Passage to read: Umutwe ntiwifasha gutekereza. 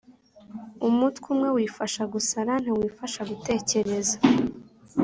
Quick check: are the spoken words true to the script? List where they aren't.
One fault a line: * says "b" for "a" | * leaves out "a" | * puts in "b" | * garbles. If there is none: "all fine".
* puts in "umwe wifasha gusara"